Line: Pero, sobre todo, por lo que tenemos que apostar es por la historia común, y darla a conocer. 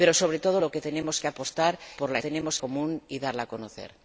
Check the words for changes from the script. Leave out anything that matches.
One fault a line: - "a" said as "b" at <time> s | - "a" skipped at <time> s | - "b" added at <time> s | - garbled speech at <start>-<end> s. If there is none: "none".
- "es" skipped at 1.8 s
- "historia" said as "tenemos" at 2.2 s